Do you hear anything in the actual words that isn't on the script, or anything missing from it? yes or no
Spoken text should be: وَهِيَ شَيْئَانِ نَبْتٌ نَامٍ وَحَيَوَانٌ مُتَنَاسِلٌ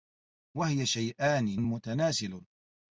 yes